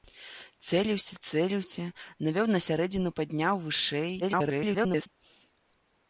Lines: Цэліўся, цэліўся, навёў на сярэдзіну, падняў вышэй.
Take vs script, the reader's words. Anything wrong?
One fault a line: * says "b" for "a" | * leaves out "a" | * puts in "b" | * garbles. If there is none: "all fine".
* garbles